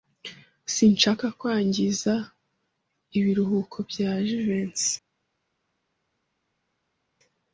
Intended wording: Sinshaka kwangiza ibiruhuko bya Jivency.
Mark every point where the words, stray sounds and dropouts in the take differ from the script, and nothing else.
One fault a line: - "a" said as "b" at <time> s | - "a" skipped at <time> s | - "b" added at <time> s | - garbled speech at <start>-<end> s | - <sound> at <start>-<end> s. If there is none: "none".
none